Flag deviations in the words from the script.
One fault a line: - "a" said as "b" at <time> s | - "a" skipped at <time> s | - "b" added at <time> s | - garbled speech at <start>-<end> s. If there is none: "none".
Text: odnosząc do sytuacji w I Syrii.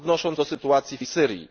none